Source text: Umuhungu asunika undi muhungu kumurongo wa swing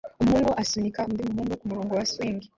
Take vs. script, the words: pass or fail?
pass